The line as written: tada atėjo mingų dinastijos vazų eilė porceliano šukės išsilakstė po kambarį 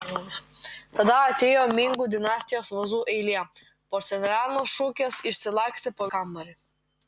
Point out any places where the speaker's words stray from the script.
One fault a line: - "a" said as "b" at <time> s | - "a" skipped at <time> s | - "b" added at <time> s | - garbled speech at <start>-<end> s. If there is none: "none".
none